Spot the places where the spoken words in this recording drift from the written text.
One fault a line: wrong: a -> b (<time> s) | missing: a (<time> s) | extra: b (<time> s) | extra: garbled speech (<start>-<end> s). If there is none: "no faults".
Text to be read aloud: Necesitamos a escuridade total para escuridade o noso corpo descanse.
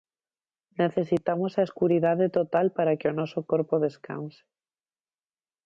wrong: escuridade -> que (3.0 s)